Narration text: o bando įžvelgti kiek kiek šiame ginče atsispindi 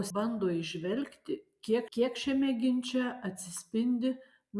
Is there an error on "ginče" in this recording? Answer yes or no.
no